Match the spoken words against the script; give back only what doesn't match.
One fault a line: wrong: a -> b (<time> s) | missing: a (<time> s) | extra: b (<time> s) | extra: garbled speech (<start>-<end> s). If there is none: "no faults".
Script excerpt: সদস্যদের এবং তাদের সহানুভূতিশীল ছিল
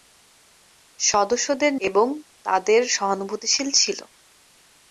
no faults